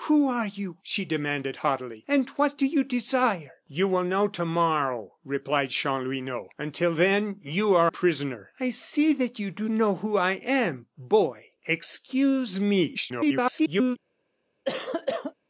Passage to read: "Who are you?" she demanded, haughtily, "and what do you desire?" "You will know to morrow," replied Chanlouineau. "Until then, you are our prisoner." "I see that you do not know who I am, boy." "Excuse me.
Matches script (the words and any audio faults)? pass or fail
fail